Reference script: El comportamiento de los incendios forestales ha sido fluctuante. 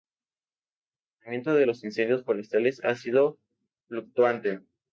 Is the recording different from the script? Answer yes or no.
no